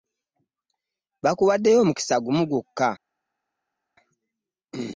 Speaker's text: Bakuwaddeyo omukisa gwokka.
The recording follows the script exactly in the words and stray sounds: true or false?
false